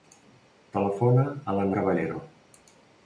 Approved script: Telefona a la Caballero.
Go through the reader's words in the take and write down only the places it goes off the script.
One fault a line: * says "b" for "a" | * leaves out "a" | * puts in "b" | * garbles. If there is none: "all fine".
all fine